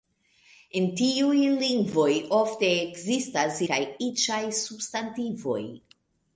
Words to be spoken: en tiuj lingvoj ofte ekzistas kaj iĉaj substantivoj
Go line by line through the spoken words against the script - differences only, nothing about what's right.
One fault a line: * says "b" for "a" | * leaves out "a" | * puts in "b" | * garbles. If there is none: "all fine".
all fine